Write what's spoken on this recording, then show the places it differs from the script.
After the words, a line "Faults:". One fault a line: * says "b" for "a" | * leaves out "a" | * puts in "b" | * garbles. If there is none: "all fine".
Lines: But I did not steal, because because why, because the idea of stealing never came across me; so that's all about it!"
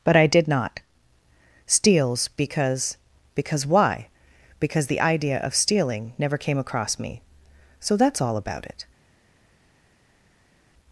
But I did not steals, because because why, because the idea of stealing never came across me; so that's all about it!"
Faults:
* says "steals" for "steal"